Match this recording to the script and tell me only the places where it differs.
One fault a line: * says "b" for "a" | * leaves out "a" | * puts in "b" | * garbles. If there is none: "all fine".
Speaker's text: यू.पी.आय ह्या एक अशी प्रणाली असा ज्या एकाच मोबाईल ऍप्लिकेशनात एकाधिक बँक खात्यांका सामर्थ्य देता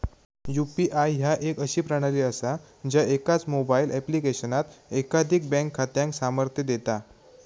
all fine